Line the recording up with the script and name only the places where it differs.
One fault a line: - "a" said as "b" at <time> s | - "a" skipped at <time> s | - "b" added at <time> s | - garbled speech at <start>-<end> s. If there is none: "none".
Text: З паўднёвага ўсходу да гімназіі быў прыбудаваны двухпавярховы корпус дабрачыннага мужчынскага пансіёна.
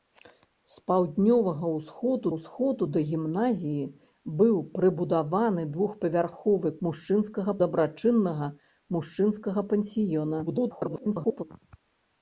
- "ўсходу" added at 2.3 s
- "корпус" said as "мужчынскага" at 6.9 s
- garbled speech at 10.5-11.4 s